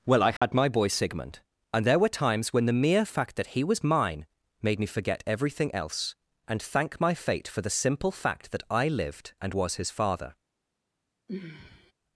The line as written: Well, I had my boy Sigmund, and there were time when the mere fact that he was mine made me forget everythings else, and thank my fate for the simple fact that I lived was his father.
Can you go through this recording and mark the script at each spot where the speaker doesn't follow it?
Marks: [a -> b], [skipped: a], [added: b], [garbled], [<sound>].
Well, I had [dropout] my boy Sigmund, and there were [time -> times] when the mere fact that he was mine made me forget [everythings -> everything] else, and thank my fate for the simple fact that I lived [added: and] was his father. [sigh]